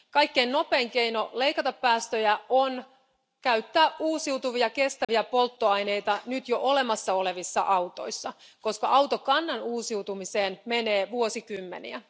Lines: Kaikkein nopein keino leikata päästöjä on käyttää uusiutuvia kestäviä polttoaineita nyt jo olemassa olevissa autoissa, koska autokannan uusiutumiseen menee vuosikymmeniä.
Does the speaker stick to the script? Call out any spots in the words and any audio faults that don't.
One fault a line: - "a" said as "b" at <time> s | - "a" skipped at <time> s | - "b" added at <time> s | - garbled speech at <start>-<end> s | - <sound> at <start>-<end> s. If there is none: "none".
- dropout at 5.0-5.1 s